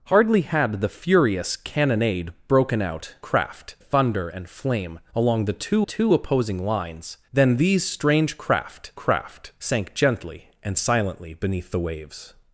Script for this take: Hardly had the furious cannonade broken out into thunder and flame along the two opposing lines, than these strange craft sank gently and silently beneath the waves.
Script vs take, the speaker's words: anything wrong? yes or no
yes